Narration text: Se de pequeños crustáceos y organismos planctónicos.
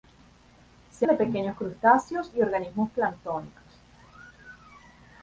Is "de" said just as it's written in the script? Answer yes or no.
yes